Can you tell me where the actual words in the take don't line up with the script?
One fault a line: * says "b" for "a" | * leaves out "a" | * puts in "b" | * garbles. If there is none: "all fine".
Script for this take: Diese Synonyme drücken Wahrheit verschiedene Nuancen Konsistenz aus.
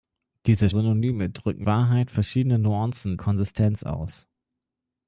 all fine